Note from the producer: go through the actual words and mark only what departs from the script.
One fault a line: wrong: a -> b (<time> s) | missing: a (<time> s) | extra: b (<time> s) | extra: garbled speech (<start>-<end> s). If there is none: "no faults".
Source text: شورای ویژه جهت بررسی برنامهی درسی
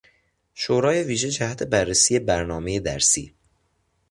no faults